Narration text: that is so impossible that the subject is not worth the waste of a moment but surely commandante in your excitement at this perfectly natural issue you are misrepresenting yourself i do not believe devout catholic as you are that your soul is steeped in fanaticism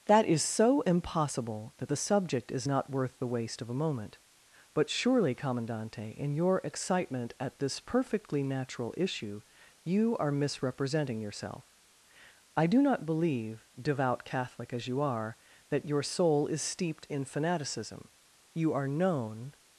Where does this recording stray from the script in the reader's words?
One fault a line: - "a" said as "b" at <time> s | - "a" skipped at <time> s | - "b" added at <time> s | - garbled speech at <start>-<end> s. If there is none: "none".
- "you are known" added at 18.5 s